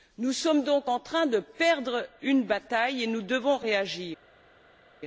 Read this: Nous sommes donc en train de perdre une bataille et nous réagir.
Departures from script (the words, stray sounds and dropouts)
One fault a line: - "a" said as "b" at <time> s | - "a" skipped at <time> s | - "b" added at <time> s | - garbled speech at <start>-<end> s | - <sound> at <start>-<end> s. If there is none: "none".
- "devons" added at 3.2 s